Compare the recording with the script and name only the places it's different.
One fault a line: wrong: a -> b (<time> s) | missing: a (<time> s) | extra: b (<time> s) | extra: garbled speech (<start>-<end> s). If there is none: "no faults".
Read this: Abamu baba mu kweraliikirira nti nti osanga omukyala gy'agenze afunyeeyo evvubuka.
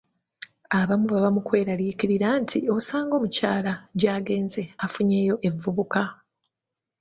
missing: nti (2.6 s)